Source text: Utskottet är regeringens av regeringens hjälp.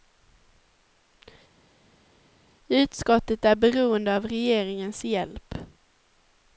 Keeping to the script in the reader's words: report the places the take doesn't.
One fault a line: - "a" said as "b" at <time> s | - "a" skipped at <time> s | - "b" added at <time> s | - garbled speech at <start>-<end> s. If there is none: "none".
- "regeringens" said as "beroende" at 3.5 s